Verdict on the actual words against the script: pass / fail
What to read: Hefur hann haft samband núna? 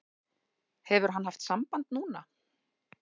pass